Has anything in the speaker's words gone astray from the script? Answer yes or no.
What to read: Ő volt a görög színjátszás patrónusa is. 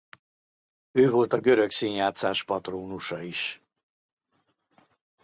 no